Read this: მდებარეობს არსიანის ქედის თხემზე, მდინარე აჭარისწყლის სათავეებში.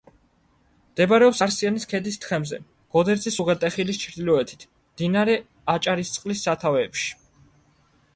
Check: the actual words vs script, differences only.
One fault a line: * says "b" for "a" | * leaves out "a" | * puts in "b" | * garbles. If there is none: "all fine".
* puts in "გოდერძის უღელტეხილის ჩრდილოეთით"